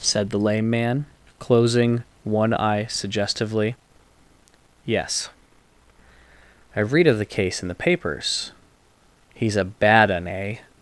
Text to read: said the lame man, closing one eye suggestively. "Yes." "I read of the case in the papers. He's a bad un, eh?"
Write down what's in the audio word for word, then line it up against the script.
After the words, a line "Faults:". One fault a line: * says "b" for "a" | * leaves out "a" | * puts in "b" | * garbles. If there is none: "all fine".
said the lame man, closing one eye suggestively. "Yes." "I read of the case in the papers. He's a bad un, eh?"
Faults:
all fine